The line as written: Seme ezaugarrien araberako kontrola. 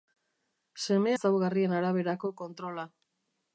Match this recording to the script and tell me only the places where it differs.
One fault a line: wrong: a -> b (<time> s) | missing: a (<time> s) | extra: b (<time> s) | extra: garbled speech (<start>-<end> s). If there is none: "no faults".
no faults